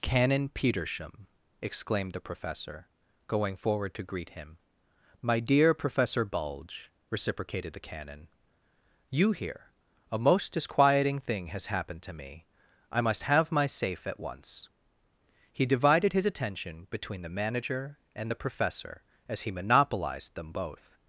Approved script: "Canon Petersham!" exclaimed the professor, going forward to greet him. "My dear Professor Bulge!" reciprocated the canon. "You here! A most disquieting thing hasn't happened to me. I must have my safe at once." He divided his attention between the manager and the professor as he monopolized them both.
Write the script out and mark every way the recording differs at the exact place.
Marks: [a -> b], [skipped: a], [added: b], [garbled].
"Canon Petersham!" exclaimed the professor, going forward to greet him. "My dear Professor Bulge!" reciprocated the canon. "You here! A most disquieting thing [hasn't -> has] happened to me. I must have my safe at once." He divided his attention between the manager and the professor as he monopolized them both.